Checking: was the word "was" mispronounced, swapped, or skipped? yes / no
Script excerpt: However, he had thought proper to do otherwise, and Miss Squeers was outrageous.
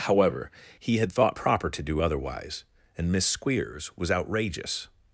no